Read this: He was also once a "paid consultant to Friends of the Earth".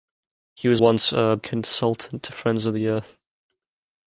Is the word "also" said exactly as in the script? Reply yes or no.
no